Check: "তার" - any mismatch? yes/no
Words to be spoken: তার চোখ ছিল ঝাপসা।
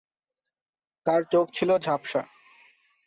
no